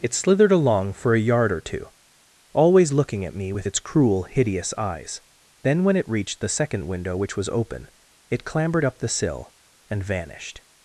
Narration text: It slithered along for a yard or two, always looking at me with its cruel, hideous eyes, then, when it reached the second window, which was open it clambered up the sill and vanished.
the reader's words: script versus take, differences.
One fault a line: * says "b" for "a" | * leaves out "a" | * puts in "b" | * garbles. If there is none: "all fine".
all fine